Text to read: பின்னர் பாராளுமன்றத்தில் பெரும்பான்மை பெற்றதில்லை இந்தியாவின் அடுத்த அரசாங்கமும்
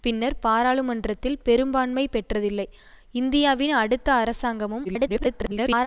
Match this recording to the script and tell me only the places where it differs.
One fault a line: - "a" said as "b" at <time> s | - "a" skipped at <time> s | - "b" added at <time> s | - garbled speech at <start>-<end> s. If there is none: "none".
- garbled speech at 4.8-5.9 s